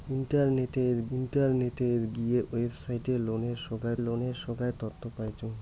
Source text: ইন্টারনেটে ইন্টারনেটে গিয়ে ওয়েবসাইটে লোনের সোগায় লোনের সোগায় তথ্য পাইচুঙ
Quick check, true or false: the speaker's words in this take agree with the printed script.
true